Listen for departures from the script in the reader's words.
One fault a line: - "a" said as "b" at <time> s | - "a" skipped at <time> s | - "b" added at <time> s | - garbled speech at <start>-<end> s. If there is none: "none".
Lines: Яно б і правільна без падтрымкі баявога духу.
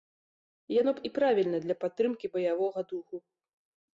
- "без" said as "для" at 1.6 s